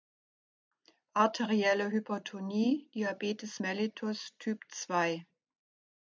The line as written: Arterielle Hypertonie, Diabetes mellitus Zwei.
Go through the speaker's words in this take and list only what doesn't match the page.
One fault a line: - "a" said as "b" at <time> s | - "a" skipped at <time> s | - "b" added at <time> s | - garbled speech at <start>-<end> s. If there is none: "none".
- "Typ" added at 4.4 s